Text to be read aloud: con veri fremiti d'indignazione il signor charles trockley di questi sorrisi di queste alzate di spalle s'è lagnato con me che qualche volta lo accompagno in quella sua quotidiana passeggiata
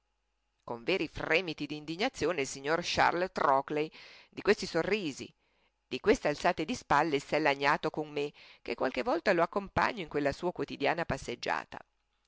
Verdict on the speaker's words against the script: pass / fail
pass